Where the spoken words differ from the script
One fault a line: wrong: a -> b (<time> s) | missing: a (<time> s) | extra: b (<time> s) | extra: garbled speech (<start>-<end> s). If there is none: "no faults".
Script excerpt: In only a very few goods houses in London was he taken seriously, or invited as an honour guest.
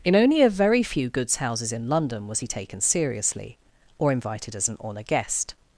no faults